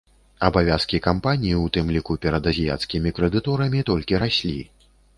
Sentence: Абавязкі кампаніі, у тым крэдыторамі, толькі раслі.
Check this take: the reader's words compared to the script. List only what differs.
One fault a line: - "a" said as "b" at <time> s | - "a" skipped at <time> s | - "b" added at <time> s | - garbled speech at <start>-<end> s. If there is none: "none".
- "ліку перад азіяцкімі" added at 1.9 s